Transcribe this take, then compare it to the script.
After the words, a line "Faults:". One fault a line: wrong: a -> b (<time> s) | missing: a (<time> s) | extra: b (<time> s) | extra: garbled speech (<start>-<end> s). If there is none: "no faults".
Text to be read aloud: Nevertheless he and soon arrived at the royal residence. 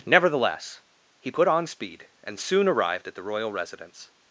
Nevertheless he put on speed and soon arrived at the royal residence.
Faults:
extra: put on speed (1.3 s)